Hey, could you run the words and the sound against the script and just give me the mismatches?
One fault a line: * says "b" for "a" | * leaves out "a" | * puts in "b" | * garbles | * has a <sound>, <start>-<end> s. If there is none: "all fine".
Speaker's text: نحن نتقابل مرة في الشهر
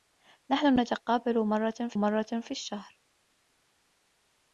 * puts in "مرة في"